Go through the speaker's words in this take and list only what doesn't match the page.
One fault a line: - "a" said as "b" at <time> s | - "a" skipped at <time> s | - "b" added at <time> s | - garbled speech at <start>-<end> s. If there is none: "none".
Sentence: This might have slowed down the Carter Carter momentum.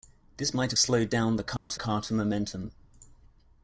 none